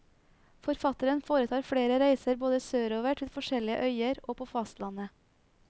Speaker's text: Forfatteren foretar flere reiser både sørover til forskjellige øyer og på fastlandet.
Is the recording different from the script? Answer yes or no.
no